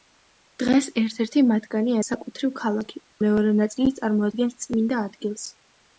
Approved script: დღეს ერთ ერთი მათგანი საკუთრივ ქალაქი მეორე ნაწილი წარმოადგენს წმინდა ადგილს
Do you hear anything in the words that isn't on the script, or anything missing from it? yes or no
no